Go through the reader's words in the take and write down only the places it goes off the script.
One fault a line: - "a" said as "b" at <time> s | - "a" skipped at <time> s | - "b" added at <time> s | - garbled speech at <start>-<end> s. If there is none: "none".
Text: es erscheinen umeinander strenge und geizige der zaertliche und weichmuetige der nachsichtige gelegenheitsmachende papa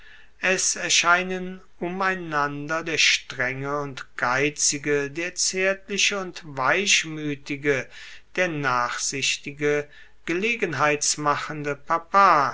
- "der" added at 2.8 s